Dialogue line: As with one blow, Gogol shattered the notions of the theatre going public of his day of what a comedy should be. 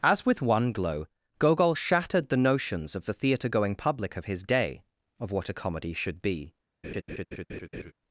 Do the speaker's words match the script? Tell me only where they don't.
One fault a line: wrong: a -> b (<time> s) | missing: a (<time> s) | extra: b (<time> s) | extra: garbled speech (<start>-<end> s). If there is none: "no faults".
wrong: blow -> glow (0.7 s)